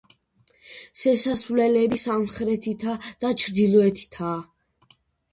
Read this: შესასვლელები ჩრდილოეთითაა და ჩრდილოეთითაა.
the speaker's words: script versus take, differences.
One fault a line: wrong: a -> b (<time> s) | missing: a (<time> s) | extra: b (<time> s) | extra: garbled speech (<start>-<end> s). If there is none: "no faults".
wrong: ჩრდილოეთითაა -> სამხრეთითა (2.0 s)